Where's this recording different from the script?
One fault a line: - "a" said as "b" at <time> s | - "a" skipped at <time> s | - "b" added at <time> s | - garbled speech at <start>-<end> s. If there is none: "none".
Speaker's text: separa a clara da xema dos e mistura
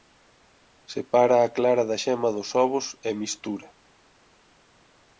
- "ovos" added at 2.6 s